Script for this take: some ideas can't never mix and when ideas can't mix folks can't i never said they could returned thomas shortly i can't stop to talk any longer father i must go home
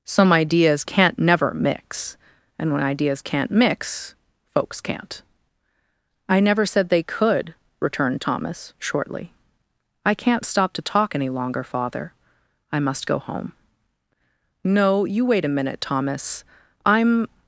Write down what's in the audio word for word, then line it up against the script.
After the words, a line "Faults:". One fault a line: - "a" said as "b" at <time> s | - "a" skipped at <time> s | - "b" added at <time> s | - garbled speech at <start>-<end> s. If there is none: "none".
some ideas can't never mix and when ideas can't mix folks can't i never said they could returned thomas shortly i can't stop to talk any longer father i must go home no you wait a minute thomas i'm
Faults:
- "no you wait a minute thomas i'm" added at 14.6 s